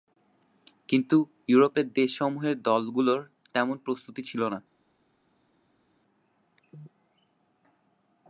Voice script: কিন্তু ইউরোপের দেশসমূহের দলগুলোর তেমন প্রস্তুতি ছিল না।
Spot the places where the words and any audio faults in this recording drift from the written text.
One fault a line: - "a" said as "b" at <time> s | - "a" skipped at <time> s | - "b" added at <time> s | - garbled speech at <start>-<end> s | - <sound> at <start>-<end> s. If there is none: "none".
none